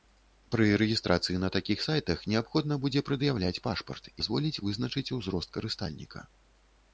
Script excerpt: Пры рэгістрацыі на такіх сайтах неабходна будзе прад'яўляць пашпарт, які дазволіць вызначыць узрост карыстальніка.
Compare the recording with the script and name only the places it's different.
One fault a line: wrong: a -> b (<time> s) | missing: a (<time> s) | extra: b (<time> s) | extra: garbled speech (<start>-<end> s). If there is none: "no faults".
missing: які (4.1 s)